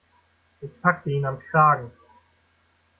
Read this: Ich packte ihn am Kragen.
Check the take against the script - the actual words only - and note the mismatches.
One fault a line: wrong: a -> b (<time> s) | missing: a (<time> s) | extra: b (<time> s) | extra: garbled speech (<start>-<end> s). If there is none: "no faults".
no faults